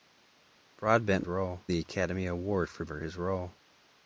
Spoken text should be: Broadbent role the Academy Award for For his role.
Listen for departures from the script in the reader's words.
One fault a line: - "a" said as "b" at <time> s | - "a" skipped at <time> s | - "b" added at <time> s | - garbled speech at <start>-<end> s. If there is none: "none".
none